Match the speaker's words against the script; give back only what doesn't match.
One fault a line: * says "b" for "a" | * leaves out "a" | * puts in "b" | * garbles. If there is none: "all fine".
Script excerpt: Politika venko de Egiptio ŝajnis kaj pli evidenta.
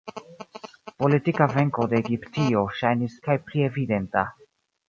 all fine